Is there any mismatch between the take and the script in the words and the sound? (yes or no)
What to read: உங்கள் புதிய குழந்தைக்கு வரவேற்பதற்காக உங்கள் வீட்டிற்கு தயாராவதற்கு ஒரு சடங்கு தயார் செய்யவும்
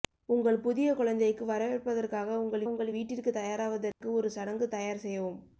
yes